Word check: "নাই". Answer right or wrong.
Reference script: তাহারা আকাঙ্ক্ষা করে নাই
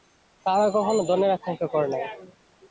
right